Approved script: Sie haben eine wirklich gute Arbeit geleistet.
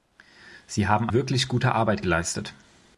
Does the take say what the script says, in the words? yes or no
no